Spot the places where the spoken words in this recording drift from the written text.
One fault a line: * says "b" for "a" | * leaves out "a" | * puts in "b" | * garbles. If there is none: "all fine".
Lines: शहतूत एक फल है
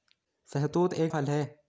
all fine